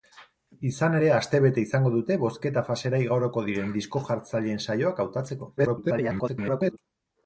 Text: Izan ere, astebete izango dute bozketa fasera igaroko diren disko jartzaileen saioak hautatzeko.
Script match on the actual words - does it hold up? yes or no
no